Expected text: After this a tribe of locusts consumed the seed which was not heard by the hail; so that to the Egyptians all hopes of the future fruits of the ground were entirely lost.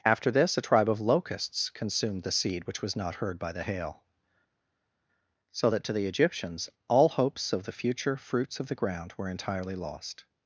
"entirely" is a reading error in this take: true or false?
false